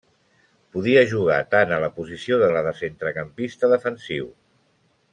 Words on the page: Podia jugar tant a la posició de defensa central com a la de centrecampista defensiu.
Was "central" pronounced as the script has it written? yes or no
no